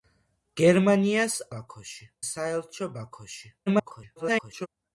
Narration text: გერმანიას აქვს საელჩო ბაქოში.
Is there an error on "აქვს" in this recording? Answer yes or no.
yes